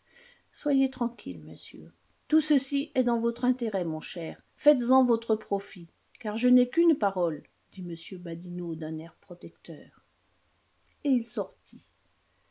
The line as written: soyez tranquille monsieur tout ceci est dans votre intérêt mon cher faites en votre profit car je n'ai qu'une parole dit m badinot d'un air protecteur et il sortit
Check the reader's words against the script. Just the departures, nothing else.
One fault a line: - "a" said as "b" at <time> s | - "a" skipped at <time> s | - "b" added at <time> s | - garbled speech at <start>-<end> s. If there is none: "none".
none